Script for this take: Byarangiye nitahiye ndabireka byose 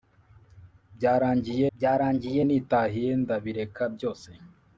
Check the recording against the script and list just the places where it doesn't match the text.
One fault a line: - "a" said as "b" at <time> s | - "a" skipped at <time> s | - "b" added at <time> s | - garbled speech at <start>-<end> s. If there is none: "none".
- "byarangiye" added at 1.8 s